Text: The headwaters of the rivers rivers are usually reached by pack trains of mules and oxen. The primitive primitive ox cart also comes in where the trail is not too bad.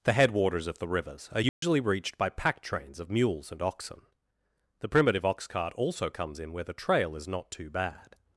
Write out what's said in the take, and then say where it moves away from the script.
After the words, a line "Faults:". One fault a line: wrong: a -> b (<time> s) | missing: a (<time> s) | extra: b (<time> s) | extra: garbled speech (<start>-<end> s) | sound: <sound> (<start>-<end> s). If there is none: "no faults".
The headwaters of the rivers are usually reached by pack trains of mules and oxen. The primitive ox cart also comes in where the trail is not too bad.
Faults:
missing: rivers (1.3 s)
sound: dropout (1.5-1.6 s)
missing: primitive (5.2 s)